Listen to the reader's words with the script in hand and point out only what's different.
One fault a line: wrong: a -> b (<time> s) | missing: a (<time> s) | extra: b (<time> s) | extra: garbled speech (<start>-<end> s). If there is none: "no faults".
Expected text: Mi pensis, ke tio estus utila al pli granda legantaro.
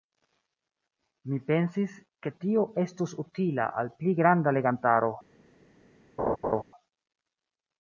no faults